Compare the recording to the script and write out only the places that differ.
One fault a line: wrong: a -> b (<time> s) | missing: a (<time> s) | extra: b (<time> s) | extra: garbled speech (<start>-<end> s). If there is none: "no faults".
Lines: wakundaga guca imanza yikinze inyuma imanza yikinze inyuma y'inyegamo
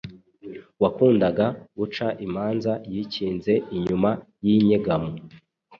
missing: imanza yikinze inyuma (4.1 s)